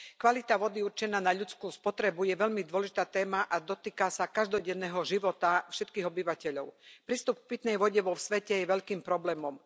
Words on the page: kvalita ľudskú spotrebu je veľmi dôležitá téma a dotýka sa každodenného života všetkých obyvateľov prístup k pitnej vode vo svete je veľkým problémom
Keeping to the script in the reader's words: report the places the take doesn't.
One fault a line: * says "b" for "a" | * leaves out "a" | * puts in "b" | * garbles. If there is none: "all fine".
* puts in "vody určená na"